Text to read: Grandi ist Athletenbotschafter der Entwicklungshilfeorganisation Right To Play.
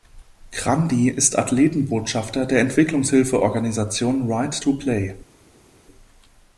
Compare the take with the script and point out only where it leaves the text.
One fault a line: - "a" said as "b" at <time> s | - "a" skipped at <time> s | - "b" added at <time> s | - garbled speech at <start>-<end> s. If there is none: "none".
none